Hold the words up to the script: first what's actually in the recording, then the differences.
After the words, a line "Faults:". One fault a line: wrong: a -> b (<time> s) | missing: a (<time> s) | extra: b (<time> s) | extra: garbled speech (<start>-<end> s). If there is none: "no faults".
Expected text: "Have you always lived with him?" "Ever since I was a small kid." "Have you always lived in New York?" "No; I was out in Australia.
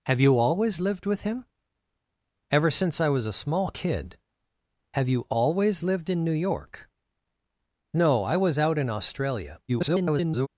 "Have you always lived with him?" "Ever since I was a small kid." "Have you always lived in New York?" "No; I was out in Australia. [garbled]
Faults:
extra: garbled speech (9.7-10.5 s)